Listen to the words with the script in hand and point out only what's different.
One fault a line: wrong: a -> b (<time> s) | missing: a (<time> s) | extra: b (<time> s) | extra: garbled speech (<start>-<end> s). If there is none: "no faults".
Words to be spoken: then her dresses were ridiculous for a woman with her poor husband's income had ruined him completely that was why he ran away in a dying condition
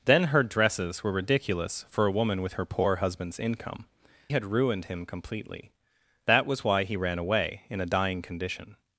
no faults